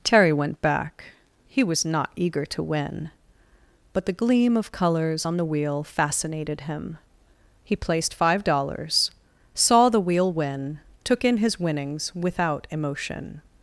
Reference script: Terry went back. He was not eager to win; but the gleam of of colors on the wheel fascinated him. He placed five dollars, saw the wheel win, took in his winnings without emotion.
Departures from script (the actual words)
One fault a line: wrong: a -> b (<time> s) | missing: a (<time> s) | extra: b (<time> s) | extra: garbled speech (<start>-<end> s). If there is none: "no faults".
missing: of (4.7 s)